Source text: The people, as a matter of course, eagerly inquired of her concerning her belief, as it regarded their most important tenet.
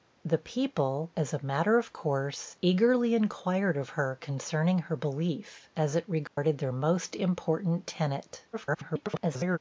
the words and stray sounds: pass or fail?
fail